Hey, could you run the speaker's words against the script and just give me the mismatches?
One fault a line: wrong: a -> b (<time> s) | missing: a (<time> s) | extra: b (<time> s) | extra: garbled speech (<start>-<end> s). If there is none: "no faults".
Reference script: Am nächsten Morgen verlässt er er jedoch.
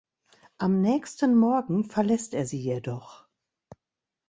wrong: er -> sie (2.4 s)